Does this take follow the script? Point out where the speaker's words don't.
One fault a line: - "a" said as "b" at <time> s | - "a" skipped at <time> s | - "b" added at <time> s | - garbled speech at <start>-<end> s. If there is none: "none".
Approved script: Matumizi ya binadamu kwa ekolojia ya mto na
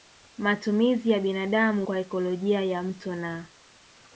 none